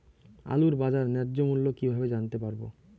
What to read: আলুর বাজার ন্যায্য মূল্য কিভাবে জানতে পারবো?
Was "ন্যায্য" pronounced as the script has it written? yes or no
yes